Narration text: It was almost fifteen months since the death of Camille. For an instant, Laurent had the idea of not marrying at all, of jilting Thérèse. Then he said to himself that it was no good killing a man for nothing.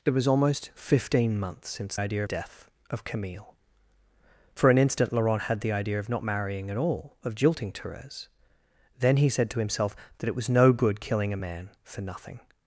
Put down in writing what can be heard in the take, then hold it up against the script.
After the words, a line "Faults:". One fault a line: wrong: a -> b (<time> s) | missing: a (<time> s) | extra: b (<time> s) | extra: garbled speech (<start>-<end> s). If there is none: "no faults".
It was almost fifteen months since idea death of Camille. For an instant, Laurent had the idea of not marrying at all, of jilting Thérèse. Then he said to himself that it was no good killing a man for nothing.
Faults:
wrong: the -> idea (2.0 s)